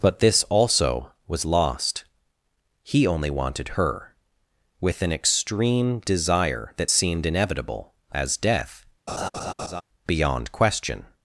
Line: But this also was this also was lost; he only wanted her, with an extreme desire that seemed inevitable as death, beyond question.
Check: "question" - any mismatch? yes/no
no